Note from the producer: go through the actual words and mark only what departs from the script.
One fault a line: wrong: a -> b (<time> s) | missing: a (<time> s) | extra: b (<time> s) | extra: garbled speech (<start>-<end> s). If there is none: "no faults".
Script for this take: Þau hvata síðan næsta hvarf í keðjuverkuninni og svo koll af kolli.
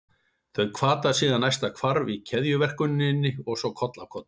no faults